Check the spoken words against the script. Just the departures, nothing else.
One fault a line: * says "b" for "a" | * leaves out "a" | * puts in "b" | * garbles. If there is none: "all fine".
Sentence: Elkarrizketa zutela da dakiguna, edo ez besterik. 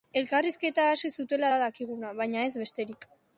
* puts in "hasi"
* says "baina" for "edo"